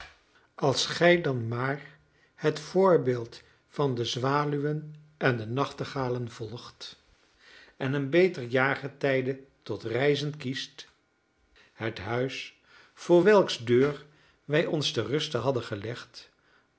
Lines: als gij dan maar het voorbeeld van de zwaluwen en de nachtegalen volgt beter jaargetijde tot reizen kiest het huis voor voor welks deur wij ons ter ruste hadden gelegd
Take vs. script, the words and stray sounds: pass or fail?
fail